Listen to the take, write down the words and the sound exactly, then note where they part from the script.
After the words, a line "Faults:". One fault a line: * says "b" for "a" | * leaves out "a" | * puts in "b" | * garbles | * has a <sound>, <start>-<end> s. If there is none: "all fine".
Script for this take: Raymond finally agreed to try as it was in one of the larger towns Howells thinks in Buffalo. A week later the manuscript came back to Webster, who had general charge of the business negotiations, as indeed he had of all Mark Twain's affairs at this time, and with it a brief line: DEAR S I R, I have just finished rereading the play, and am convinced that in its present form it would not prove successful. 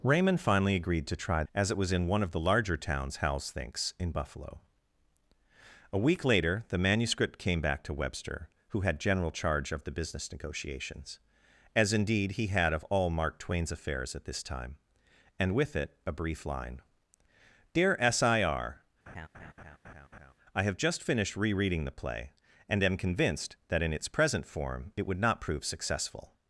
Raymond finally agreed to try as it was in one of the larger towns Howells thinks in Buffalo. A week later the manuscript came back to Webster, who had general charge of the business negotiations, as indeed he had of all Mark Twain's affairs at this time, and with it a brief line: DEAR S I R, I have just finished rereading the play, and am convinced that in its present form it would not prove successful.
Faults:
* has a laugh, 19.1-20.3 s